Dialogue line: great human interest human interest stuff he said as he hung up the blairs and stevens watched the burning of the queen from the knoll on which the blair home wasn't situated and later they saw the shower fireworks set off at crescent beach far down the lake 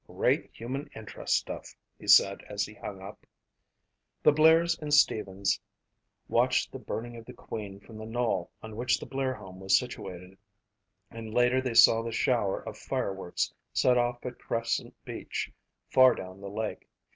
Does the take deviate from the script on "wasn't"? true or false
true